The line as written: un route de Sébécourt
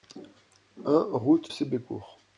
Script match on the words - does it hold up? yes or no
no